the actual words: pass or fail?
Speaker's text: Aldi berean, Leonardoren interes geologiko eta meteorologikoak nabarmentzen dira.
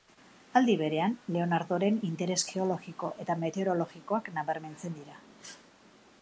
pass